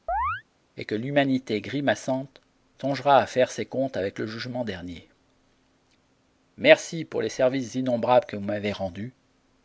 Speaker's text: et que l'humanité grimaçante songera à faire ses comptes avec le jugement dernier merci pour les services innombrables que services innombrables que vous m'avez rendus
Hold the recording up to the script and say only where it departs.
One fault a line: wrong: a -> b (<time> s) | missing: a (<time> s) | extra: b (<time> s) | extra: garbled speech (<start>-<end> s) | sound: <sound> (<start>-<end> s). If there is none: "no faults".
sound: chirp (0.1-0.4 s)
missing: services innombrables que (8.3 s)